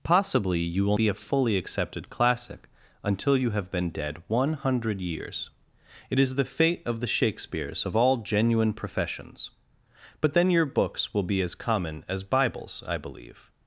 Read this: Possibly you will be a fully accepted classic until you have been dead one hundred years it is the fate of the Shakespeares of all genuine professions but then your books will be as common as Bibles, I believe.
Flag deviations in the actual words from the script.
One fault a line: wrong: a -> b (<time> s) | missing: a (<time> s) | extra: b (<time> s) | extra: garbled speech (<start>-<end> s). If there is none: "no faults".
no faults